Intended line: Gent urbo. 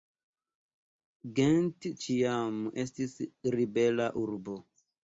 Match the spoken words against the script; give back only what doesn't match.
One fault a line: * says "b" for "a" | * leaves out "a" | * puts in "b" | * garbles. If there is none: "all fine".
* puts in "ĉiam estis ribela"